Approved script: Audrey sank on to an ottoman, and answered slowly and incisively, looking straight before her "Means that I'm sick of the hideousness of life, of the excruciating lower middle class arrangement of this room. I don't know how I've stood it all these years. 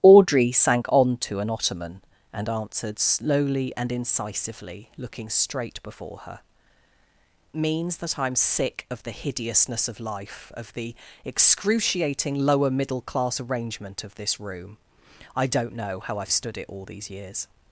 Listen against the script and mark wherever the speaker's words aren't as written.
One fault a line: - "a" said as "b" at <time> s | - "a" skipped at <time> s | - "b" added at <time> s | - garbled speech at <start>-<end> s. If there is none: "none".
none